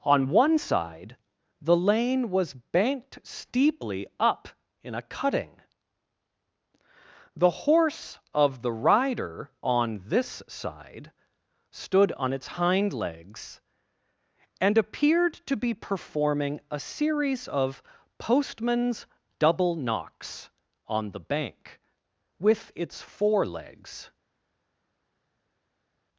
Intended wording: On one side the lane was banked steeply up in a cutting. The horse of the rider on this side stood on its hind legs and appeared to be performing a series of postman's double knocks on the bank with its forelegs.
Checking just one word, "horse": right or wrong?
right